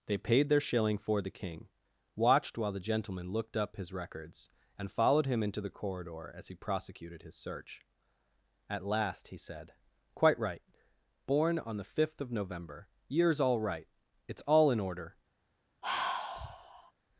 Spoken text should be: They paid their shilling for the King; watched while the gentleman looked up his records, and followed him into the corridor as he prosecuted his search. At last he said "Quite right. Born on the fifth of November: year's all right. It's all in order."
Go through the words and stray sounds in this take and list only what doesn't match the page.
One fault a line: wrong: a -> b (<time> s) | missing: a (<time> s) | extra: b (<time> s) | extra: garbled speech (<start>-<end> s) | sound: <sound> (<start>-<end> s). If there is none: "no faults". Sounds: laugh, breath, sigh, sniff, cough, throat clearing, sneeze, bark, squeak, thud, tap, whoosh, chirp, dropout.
sound: sigh (15.8-16.9 s)